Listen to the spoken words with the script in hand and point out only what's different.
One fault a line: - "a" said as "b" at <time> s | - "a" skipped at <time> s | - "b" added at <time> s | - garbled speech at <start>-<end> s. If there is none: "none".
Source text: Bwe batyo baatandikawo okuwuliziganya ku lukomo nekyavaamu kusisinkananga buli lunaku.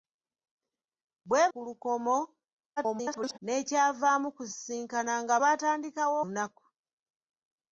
- "batyo baatandikawo okuwuliziganya" skipped at 1.4 s
- garbled speech at 2.8-3.4 s
- "buli" said as "baatandikawo" at 5.4 s